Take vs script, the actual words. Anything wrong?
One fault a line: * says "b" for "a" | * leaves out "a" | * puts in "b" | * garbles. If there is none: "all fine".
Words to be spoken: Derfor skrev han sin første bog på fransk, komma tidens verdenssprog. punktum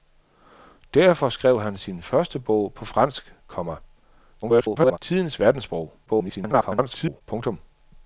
* garbles
* garbles